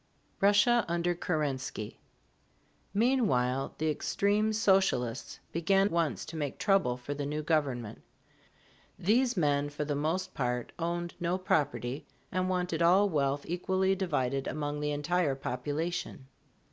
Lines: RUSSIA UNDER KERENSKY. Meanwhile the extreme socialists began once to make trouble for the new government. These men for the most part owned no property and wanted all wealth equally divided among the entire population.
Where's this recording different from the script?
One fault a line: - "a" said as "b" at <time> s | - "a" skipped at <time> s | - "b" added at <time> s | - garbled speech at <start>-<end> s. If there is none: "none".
none